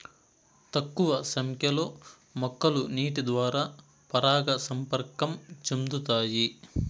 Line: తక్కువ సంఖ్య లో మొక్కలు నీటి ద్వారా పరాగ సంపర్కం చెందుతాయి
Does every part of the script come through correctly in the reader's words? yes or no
yes